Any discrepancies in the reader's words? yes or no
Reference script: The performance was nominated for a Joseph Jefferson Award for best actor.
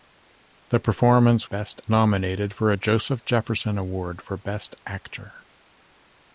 yes